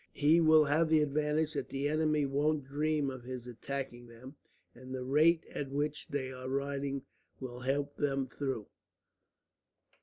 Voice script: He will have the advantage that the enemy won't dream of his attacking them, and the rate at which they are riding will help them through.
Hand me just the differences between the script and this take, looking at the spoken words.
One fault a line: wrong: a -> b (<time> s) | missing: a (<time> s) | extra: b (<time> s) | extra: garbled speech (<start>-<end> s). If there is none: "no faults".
no faults